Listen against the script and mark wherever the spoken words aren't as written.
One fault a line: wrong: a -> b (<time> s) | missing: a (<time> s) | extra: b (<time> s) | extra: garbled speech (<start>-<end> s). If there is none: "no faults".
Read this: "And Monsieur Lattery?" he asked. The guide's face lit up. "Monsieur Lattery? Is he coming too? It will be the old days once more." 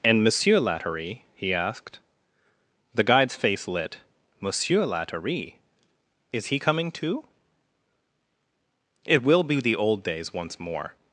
missing: up (4.0 s)